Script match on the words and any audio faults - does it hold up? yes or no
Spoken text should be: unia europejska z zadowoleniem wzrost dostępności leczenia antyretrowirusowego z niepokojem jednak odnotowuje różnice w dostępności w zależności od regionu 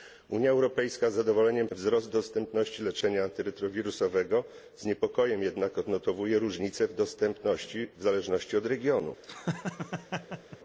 no